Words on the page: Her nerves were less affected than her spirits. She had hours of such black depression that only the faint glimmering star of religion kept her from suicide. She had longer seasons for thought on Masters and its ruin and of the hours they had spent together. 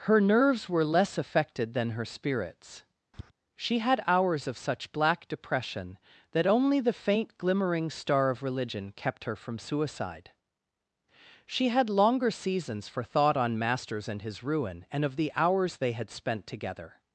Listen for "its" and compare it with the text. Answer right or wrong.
wrong